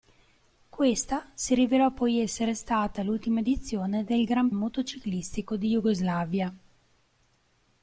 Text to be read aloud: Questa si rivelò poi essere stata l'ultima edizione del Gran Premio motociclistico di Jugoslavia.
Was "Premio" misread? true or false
true